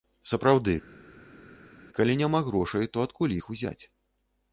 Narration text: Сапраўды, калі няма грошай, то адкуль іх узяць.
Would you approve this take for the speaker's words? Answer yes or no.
yes